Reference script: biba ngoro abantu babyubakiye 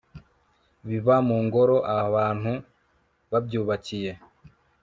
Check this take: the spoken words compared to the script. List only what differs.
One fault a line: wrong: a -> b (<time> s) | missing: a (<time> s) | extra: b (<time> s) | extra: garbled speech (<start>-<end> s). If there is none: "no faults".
extra: mu (1.3 s)